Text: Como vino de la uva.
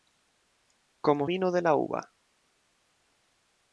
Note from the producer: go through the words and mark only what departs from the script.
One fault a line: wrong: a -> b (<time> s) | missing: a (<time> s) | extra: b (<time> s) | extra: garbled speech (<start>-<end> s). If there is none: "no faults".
no faults